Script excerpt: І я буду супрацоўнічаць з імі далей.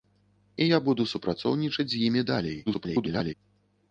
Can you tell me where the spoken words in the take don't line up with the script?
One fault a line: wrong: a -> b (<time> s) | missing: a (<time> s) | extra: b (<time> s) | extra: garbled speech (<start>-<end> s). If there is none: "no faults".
extra: garbled speech (2.7-3.3 s)